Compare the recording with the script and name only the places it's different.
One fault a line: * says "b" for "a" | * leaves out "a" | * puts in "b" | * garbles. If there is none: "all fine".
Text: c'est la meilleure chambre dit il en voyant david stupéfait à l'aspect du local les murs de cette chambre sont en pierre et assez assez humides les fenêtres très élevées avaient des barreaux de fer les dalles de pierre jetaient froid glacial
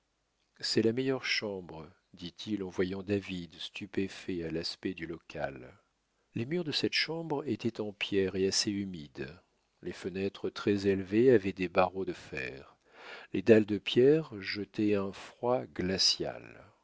* says "étaient" for "sont"
* leaves out "assez"
* puts in "un"